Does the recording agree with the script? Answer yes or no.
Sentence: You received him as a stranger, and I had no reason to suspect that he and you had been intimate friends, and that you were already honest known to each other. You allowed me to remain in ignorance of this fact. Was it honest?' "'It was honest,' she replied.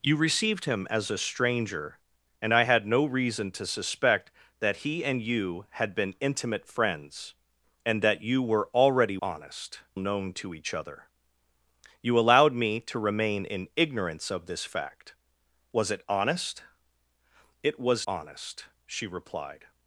yes